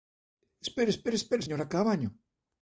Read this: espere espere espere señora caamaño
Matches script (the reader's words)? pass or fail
pass